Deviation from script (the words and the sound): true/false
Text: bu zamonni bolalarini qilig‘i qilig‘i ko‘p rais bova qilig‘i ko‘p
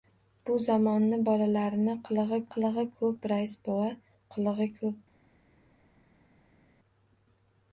false